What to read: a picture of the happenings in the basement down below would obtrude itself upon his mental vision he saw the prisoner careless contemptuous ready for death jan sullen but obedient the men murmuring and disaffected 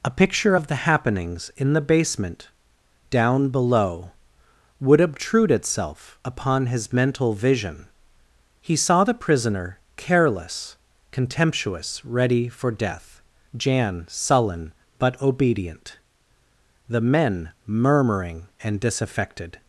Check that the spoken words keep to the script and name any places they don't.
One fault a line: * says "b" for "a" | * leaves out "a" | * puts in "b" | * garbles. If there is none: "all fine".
all fine